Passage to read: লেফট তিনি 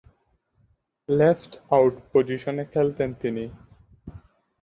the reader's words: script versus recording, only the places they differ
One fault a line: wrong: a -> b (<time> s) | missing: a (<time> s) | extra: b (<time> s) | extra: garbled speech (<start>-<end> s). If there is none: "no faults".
extra: আউট পজিশনে খেলতেন (1.7 s)